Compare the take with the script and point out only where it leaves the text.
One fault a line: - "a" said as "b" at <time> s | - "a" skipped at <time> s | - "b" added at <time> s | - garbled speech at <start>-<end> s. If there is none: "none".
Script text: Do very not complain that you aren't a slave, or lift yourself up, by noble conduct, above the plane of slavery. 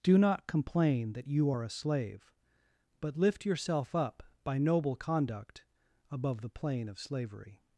- "very" skipped at 0.2 s
- "aren't" said as "are" at 1.5 s
- "or" said as "but" at 3.0 s